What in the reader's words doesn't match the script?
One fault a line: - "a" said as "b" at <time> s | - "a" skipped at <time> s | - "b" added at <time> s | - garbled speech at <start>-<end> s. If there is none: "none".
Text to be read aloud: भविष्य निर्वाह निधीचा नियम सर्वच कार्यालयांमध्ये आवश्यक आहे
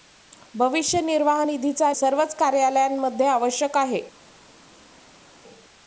- "नियम" skipped at 1.9 s